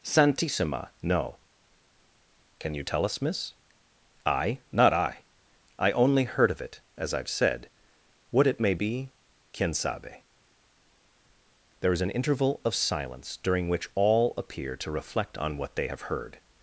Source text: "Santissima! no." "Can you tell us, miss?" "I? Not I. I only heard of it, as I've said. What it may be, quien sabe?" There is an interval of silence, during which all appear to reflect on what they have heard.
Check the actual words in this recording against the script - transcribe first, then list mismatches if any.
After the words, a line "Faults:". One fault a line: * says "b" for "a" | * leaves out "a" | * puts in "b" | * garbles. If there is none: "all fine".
"Santissima! no." "Can you tell us, miss?" "I? Not I. I only heard of it, as I've said. What it may be, quien sabe?" There is an interval of silence, during which all appear to reflect on what they have heard.
Faults:
all fine